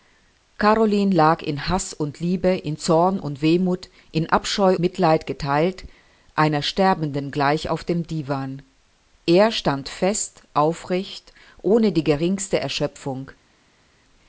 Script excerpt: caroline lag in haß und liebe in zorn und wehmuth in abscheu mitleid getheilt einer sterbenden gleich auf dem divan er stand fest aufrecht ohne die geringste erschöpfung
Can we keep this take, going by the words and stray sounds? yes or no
yes